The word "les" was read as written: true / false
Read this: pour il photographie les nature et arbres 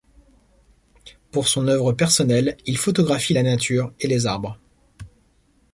false